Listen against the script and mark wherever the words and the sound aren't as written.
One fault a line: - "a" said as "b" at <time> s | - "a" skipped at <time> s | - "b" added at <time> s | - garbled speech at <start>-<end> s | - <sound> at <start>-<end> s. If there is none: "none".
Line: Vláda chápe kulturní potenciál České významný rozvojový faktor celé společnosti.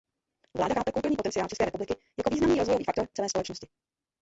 - "republiky jako" added at 1.6 s